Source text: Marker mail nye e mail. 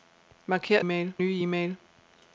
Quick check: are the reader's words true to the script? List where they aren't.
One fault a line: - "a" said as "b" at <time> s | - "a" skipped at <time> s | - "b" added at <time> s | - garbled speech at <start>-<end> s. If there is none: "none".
none